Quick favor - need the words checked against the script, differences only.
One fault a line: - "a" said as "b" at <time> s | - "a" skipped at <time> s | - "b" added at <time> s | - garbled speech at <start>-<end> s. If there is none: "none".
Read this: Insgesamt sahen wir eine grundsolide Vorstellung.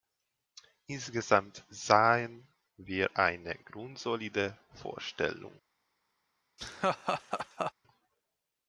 none